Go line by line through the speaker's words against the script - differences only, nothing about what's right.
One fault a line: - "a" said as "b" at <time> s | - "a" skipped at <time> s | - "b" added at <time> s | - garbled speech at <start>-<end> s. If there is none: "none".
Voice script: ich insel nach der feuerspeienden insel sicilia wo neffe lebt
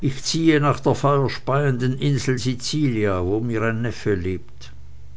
- "insel" said as "ziehe" at 0.2 s
- "mir ein" added at 3.4 s